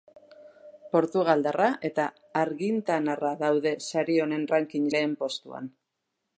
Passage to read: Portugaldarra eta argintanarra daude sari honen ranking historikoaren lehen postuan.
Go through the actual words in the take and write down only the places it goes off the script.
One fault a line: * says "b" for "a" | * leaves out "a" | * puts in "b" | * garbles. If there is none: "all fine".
* leaves out "historikoaren"